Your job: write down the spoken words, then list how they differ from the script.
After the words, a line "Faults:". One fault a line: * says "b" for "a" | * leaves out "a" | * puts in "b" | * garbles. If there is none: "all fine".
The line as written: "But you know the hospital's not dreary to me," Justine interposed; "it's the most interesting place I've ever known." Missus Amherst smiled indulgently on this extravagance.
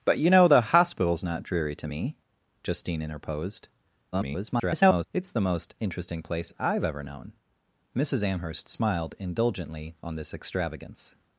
"But you know the hospital's not dreary to me," Justine interposed; [garbled] "it's the most interesting place I've ever known." Missus Amherst smiled indulgently on this extravagance.
Faults:
* garbles